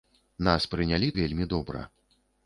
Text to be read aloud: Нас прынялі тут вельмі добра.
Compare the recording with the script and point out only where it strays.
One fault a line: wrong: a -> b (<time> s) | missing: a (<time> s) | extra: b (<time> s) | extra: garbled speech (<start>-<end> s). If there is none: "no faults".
missing: тут (1.1 s)